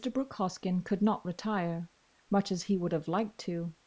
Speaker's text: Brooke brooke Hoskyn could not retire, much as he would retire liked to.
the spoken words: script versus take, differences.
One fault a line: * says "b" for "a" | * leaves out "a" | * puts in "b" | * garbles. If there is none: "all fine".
* leaves out "brooke"
* says "have" for "retire"